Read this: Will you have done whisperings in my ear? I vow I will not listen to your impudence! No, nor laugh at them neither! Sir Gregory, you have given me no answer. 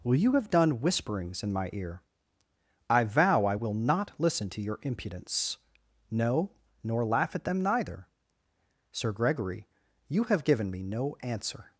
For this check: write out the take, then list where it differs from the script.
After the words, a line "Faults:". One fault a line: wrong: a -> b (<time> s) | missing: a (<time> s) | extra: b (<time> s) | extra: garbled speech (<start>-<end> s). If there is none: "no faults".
Will you have done whisperings in my ear? I vow I will not listen to your impudence! No, nor laugh at them neither! Sir Gregory, you have given me no answer.
Faults:
no faults